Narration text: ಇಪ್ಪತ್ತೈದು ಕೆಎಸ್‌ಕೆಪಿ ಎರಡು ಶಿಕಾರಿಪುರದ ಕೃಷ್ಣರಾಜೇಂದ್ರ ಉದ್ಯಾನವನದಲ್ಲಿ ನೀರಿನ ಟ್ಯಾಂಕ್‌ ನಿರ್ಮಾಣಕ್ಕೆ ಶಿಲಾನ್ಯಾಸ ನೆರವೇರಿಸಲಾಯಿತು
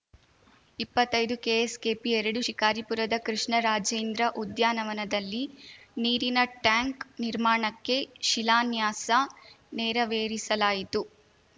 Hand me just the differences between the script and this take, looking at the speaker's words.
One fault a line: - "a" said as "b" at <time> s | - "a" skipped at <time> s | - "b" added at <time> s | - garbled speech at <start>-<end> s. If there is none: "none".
none